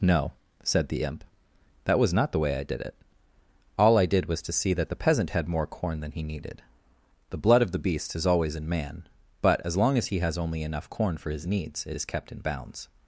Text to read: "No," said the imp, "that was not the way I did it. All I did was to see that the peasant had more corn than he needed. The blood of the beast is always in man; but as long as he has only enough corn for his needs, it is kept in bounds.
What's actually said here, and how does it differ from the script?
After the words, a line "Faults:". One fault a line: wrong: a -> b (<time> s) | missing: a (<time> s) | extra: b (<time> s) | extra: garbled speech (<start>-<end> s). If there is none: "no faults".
"No," said the imp, "that was not the way I did it. All I did was to see that the peasant had more corn than he needed. The blood of the beast is always in man; but as long as he has only enough corn for his needs, it is kept in bounds.
Faults:
no faults